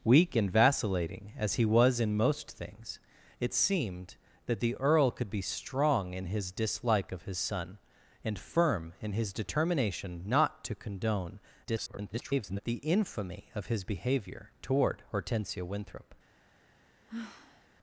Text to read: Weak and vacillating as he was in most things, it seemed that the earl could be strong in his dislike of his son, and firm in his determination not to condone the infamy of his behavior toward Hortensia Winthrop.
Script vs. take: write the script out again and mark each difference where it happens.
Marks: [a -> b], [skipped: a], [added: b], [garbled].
Weak and vacillating as he was in most things, it seemed that the earl could be strong in his dislike of his son, and firm in his determination not to condone [garbled] the infamy of his behavior toward Hortensia Winthrop.